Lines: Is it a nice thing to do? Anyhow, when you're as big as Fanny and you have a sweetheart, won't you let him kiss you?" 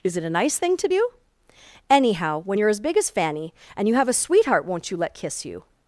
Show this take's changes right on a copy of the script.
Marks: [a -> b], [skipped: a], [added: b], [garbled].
Is it a nice thing to do? Anyhow, when you're as big as Fanny and you have a sweetheart, won't you let [skipped: him] kiss you?"